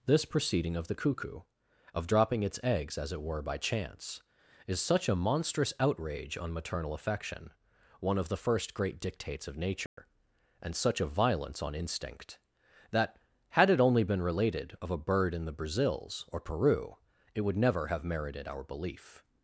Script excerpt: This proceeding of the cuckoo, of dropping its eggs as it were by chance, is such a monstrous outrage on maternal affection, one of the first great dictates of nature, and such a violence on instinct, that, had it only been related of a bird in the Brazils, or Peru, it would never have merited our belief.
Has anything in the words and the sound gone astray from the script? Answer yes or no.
yes